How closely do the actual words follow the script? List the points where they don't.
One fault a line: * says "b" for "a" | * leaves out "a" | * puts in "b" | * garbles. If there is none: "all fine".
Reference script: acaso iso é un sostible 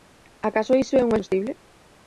all fine